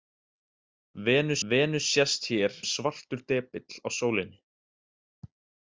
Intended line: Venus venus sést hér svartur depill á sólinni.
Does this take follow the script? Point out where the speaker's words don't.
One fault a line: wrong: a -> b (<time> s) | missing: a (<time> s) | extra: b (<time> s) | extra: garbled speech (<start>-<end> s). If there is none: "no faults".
no faults